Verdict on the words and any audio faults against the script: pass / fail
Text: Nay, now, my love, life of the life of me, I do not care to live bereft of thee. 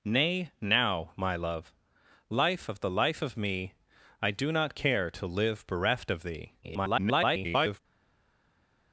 fail